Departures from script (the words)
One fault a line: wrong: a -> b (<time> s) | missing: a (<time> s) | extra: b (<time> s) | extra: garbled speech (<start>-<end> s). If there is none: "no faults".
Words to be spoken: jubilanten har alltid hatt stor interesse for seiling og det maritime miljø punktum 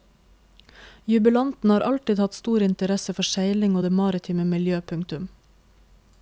no faults